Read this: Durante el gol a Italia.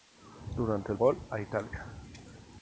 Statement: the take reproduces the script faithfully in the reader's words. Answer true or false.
true